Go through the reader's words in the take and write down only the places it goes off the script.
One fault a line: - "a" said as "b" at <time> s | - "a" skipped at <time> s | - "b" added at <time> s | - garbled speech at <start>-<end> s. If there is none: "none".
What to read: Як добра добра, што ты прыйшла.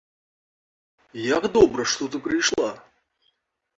- "добра" skipped at 1.8 s